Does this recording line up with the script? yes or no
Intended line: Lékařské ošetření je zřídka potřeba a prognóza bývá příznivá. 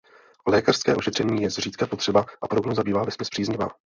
no